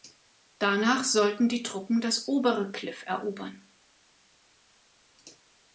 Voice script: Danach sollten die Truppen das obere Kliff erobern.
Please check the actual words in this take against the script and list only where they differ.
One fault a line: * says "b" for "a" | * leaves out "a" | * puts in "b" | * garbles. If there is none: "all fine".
all fine